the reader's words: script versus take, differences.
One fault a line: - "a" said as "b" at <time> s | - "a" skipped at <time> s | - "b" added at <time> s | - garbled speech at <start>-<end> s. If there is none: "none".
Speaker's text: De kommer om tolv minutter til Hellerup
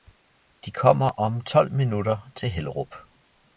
none